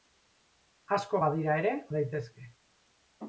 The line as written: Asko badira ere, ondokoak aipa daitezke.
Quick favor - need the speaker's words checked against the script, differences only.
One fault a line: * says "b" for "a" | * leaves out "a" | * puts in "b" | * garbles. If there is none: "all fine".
* leaves out "ondokoak aipa"